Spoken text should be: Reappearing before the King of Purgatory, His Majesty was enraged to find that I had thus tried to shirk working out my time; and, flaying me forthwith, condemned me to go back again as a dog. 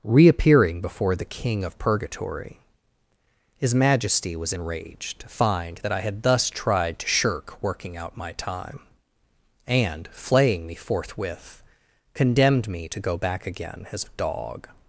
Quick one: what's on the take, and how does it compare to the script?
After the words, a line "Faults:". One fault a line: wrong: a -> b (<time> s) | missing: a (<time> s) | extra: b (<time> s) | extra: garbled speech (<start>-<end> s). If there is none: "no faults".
Reappearing before the King of Purgatory, His Majesty was enraged to find that I had thus tried to shirk working out my time; and, flaying me forthwith, condemned me to go back again as a dog.
Faults:
no faults